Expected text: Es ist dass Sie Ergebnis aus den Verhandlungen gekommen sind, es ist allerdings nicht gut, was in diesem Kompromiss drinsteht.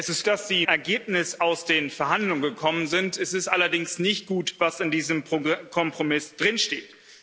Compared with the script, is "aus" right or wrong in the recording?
right